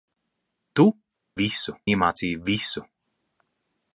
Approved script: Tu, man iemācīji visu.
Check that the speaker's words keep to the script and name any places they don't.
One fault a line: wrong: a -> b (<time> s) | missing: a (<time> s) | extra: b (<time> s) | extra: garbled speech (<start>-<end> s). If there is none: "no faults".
wrong: man -> visu (1.4 s)